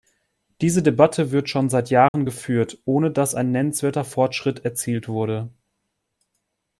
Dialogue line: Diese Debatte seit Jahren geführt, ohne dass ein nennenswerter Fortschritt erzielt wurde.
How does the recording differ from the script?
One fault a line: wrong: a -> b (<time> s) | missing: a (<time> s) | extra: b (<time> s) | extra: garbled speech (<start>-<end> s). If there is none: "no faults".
extra: wird schon (1.3 s)